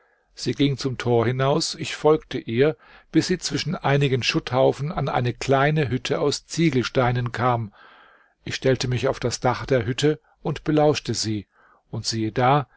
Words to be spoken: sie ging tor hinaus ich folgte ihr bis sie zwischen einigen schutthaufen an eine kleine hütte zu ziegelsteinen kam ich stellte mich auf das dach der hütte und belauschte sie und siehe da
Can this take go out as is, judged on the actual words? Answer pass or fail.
fail